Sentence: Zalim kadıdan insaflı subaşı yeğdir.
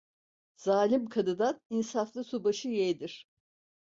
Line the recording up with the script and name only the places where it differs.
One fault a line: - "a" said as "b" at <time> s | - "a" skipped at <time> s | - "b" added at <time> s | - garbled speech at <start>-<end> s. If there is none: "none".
none